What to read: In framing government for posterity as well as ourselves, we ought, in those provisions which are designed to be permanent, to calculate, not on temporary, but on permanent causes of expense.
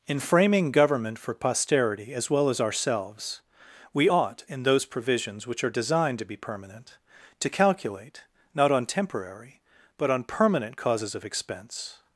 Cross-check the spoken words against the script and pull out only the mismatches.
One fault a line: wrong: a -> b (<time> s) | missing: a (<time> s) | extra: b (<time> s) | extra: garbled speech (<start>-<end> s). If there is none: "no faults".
no faults